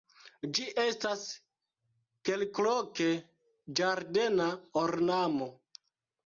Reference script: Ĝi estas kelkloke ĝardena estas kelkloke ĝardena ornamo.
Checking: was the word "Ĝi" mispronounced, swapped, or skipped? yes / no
no